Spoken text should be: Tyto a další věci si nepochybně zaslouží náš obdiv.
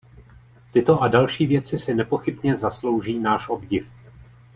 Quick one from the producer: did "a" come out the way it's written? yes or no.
yes